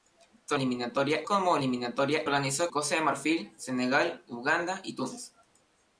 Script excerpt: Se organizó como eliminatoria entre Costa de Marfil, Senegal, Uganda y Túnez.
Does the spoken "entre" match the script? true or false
false